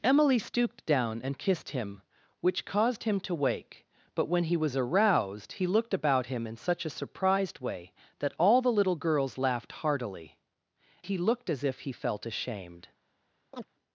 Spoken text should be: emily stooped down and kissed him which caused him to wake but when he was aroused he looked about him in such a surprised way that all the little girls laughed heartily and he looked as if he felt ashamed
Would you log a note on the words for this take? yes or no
yes